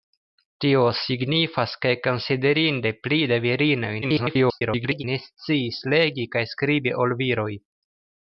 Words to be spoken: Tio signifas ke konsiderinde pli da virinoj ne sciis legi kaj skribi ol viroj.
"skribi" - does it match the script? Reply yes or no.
yes